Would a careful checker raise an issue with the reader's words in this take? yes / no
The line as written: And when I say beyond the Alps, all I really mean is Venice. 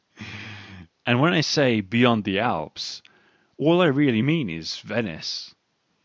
no